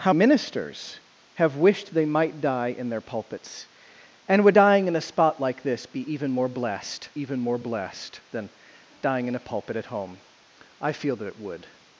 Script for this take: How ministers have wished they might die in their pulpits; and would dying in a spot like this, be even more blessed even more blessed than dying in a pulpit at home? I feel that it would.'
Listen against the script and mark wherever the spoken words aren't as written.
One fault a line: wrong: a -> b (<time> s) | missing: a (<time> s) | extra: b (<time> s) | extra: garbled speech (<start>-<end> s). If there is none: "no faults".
no faults